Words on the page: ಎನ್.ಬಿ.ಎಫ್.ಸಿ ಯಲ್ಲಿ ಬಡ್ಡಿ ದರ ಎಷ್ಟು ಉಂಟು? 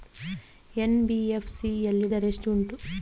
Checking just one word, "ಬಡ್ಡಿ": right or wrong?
wrong